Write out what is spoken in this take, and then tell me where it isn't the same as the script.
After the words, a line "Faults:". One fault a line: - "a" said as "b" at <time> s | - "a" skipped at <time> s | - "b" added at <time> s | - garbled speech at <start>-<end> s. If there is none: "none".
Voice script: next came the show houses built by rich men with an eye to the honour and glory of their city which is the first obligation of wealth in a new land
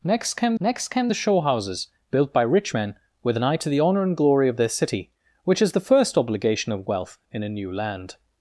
next came next came the show houses built by rich men with an eye to the honour and glory of their city which is the first obligation of wealth in a new land
Faults:
- "next came" added at 0.6 s